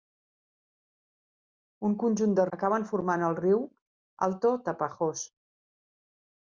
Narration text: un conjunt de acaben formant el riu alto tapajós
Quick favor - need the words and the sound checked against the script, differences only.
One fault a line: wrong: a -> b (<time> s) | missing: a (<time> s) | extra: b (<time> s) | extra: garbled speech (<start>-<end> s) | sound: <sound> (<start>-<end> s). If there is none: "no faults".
no faults